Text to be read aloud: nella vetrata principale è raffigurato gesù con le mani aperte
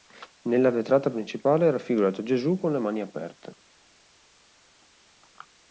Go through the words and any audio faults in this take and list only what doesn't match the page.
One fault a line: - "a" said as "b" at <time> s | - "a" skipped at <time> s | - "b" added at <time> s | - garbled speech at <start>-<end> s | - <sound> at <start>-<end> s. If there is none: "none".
none